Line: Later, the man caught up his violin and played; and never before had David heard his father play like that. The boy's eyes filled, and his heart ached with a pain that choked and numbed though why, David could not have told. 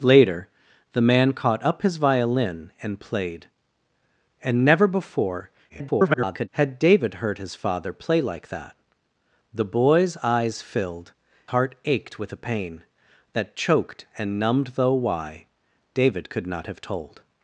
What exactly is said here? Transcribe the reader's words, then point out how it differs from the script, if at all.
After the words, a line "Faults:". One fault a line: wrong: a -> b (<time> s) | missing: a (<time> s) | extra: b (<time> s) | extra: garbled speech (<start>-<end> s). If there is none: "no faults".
Later, the man caught up his violin and played; and never before [garbled] had David heard his father play like that. The boy's eyes filled, heart ached with a pain that choked and numbed though why, David could not have told.
Faults:
extra: garbled speech (5.7-6.5 s)
missing: and his (11.1 s)